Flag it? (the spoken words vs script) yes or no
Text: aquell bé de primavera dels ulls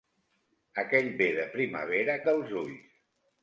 no